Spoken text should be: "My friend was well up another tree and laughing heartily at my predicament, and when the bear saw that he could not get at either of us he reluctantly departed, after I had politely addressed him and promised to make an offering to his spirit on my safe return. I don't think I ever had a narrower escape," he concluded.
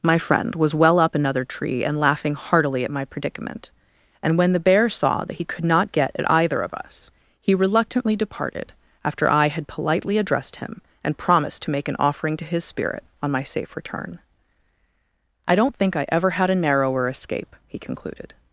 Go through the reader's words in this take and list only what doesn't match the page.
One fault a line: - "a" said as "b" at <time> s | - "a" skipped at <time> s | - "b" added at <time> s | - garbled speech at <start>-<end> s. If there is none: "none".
none